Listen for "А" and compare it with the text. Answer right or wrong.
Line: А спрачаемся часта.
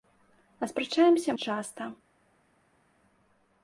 right